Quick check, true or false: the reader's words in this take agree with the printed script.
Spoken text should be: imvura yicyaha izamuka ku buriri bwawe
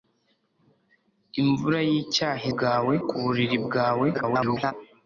false